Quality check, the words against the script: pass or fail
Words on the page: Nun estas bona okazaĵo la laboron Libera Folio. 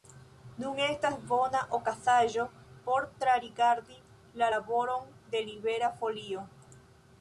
fail